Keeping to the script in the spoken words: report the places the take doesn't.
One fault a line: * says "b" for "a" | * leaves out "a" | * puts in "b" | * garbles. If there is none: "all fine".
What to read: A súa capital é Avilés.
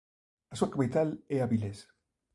all fine